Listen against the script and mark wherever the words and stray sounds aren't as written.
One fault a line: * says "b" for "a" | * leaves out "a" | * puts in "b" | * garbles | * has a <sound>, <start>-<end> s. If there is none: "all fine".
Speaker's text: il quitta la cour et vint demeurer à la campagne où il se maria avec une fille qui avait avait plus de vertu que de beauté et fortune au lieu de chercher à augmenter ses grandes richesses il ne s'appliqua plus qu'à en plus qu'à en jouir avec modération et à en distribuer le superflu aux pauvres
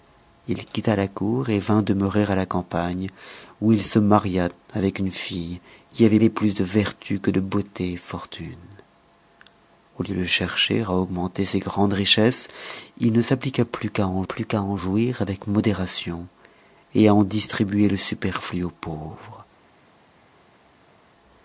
all fine